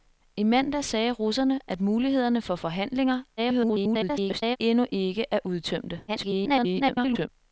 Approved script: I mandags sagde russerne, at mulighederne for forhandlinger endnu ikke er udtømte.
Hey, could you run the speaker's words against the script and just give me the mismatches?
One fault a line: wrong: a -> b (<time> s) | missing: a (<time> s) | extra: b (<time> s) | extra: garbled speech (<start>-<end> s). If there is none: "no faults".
extra: garbled speech (3.4-4.6 s)
extra: garbled speech (6.1-7.3 s)